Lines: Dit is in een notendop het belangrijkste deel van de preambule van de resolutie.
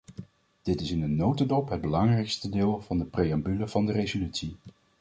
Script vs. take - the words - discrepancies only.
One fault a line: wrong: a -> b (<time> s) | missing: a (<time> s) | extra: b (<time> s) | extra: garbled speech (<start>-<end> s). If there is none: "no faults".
no faults